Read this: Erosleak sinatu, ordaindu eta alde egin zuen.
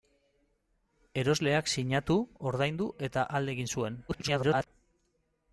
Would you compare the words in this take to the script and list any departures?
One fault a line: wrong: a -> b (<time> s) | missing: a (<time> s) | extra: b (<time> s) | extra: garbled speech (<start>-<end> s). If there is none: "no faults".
extra: garbled speech (4.1-4.7 s)